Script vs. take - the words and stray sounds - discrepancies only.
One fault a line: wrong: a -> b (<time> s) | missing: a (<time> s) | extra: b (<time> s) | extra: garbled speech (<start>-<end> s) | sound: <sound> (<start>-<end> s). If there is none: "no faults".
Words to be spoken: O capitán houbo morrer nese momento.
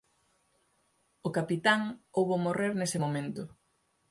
no faults